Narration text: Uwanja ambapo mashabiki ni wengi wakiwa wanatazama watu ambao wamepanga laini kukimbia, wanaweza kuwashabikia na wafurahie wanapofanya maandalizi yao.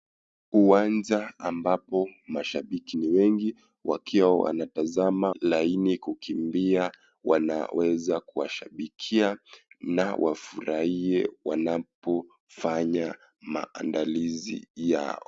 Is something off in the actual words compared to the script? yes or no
yes